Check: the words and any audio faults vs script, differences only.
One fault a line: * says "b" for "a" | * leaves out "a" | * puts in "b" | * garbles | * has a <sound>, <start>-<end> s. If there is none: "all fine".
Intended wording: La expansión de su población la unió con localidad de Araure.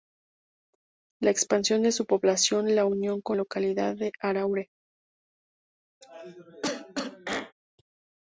* has a cough, 6.0-7.5 s